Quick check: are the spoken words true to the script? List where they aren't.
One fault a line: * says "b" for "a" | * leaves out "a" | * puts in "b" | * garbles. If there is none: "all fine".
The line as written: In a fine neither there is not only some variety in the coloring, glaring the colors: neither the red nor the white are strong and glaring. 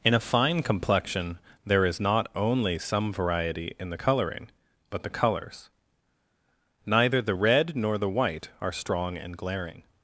* says "complexion" for "neither"
* says "but" for "glaring"